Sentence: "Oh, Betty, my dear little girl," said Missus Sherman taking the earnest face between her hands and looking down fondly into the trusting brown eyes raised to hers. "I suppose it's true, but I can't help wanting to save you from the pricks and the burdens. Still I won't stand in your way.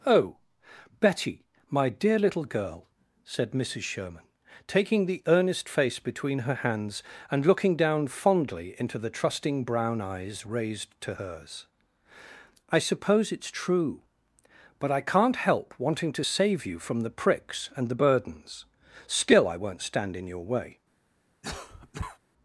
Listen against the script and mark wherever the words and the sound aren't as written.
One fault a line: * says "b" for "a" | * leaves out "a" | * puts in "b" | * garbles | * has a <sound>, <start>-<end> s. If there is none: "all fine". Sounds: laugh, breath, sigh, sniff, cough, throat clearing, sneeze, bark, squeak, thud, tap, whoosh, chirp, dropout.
* has a cough, 21.4-22.2 s